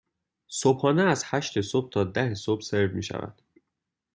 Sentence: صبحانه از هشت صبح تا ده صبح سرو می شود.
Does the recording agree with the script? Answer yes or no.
yes